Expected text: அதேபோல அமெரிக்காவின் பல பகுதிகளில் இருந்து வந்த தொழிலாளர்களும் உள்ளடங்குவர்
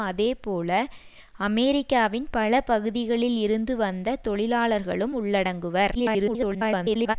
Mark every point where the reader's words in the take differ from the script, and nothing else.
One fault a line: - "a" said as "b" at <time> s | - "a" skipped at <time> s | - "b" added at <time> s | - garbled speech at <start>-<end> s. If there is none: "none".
- garbled speech at 5.9-7.2 s